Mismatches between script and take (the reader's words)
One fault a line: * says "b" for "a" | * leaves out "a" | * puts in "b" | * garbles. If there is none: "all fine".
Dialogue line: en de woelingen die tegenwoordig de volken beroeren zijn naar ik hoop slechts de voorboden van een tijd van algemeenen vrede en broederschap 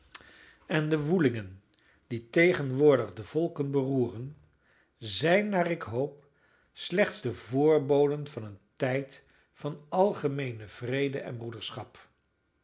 all fine